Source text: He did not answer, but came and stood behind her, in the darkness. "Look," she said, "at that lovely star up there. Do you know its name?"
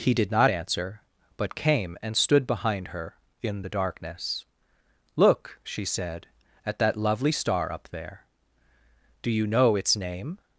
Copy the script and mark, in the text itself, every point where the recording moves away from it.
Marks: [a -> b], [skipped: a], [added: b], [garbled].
He did not answer, but came and stood behind her, in the darkness. "Look," she said, "at that lovely star up there. Do you know its name?"